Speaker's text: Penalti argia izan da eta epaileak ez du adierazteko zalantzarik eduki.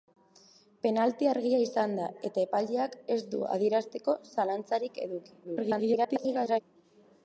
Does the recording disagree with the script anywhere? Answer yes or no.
yes